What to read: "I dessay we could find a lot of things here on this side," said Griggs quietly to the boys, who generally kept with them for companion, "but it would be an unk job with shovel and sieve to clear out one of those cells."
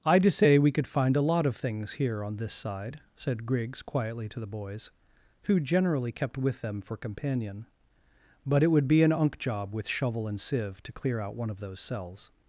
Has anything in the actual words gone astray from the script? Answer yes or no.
no